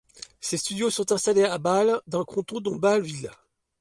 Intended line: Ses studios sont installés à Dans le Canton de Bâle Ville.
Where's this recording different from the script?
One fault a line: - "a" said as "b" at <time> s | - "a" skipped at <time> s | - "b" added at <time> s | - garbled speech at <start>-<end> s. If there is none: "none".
- "Bâle" added at 1.6 s